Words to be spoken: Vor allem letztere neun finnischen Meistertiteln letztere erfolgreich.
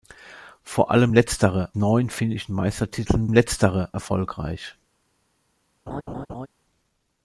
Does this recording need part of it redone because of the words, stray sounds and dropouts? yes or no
yes